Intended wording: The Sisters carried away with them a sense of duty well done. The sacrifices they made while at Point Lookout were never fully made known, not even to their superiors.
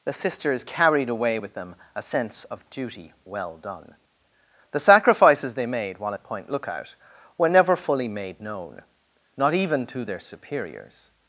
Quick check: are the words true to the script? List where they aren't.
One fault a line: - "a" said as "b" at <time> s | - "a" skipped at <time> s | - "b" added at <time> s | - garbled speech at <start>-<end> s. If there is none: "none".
none